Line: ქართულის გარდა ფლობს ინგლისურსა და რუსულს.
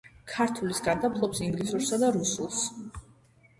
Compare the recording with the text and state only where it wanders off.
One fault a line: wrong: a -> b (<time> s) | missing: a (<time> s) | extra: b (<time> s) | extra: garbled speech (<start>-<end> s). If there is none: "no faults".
no faults